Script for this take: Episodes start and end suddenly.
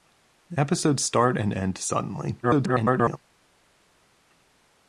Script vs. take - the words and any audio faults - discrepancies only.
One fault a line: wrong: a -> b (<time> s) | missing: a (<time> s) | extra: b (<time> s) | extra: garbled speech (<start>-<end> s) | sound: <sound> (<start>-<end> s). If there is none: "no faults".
extra: garbled speech (2.4-3.2 s)